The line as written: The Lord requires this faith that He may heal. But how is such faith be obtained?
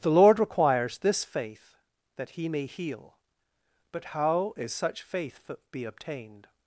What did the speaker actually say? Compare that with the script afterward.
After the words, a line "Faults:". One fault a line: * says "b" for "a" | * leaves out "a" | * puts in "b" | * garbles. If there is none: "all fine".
The Lord requires this faith that He may heal. But how is such faith be obtained?
Faults:
all fine